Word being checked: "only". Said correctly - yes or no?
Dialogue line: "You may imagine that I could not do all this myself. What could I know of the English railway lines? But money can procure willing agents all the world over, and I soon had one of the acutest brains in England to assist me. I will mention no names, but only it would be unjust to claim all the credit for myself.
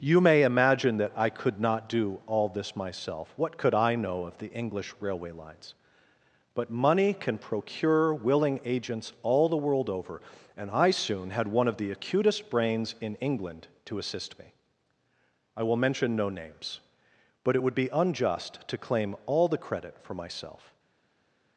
no